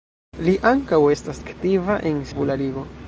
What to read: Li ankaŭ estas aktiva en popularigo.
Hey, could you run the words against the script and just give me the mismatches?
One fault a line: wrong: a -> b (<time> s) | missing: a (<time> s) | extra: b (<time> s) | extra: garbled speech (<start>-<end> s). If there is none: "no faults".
no faults